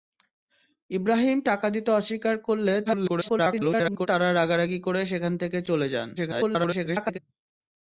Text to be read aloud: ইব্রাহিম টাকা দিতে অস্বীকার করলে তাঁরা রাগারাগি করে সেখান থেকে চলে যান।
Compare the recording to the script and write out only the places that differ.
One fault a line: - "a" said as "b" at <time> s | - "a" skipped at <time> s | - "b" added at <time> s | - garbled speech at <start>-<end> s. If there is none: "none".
- garbled speech at 2.9-4.1 s
- garbled speech at 6.2-7.2 s